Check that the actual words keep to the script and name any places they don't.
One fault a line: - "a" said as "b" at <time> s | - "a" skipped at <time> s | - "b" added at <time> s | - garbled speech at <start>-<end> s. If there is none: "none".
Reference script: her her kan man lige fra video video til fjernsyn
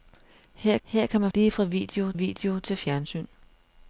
none